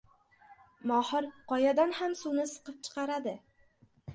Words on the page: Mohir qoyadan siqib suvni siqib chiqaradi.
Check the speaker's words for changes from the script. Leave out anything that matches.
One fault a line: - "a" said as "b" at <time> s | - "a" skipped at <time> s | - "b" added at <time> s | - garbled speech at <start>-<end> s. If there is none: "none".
- "siqib" said as "ham" at 2.0 s